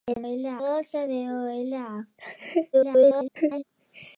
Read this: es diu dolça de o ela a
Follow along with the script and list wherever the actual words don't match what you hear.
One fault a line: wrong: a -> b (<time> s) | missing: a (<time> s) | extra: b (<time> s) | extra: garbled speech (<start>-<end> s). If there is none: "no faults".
wrong: diu -> ela (0.3 s)
extra: garbled speech (2.7-3.6 s)